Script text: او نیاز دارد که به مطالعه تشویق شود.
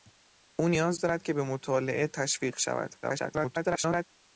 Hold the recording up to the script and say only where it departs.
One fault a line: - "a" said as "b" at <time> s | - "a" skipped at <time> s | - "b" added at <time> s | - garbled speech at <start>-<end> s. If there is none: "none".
- garbled speech at 3.0-4.1 s